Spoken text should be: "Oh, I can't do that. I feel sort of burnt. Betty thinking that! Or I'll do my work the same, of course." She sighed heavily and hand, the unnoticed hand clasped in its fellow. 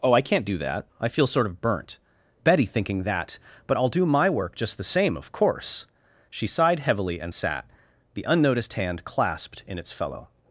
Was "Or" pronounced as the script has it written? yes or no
no